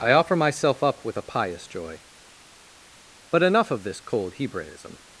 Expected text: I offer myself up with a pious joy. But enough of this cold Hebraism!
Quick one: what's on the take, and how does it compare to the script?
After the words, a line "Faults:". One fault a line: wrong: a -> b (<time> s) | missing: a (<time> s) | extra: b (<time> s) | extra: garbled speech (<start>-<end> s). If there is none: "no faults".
I offer myself up with a pious joy. But enough of this cold Hebraism!
Faults:
no faults